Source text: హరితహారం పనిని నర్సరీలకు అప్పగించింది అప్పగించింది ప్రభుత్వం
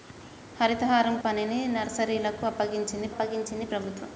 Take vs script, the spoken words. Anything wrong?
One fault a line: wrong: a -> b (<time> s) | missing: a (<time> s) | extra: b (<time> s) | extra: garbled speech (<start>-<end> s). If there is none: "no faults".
no faults